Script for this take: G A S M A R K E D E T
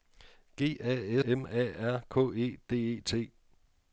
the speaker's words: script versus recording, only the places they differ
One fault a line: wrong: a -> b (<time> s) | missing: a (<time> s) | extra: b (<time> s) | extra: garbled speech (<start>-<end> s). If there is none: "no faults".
missing: S (1.2 s)